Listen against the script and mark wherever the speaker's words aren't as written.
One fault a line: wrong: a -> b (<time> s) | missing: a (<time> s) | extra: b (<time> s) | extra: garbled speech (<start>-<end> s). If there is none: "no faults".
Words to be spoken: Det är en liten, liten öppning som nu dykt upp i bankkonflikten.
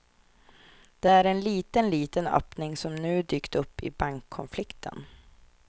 no faults